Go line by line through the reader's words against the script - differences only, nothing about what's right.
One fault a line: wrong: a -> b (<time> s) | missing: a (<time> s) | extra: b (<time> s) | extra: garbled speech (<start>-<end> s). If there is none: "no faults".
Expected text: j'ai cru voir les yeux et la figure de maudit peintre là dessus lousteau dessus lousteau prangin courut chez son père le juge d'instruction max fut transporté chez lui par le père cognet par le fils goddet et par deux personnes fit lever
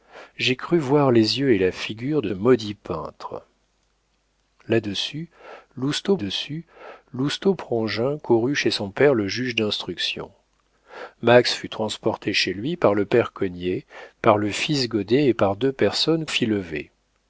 no faults